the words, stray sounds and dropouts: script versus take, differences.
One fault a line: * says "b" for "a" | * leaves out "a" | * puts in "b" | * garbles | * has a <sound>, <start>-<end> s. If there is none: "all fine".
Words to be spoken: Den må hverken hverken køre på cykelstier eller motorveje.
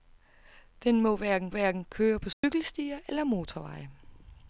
* has a dropout, 2.3-2.4 s